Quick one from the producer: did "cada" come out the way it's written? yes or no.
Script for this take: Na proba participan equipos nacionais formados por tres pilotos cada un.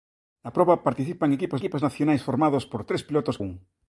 no